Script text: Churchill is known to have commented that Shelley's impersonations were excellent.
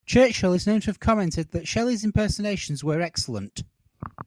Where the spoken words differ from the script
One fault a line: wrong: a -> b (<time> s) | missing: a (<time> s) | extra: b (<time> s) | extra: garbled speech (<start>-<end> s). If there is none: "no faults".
no faults